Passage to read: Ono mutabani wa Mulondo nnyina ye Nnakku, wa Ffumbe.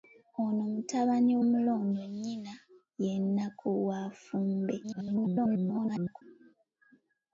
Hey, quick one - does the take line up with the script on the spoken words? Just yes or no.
no